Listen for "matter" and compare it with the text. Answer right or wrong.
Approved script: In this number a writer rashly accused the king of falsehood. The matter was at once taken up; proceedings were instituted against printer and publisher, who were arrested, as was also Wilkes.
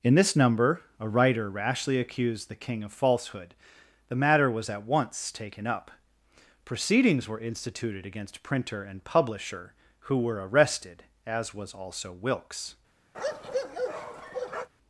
right